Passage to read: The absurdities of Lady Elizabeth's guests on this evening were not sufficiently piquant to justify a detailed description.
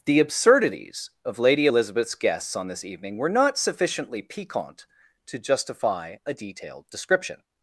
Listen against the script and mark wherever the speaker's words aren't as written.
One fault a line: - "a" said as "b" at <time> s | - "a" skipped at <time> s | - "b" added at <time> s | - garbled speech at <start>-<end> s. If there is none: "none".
none